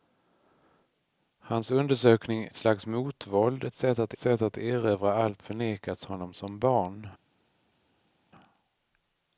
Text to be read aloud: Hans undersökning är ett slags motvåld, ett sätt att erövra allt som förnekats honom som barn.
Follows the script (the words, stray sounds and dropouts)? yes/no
no